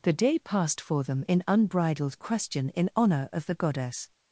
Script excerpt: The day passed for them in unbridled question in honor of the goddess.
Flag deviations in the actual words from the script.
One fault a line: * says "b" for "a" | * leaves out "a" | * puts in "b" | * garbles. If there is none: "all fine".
all fine